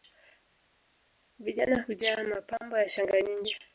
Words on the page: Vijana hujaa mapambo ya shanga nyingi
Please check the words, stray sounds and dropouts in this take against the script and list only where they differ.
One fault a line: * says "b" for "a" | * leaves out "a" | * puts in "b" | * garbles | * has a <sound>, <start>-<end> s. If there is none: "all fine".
all fine